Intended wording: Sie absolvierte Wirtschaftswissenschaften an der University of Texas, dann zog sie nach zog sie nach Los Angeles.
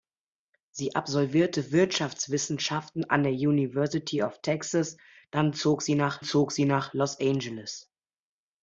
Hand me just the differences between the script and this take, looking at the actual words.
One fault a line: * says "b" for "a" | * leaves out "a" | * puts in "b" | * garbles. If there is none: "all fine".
all fine